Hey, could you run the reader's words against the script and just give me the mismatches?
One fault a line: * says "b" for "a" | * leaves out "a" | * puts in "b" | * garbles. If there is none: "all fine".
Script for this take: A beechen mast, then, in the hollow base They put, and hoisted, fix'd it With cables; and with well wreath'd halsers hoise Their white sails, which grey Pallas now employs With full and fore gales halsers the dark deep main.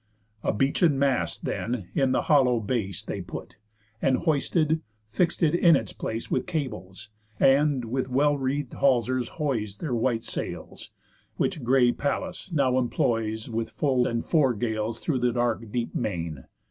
* puts in "in its place"
* says "through" for "halsers"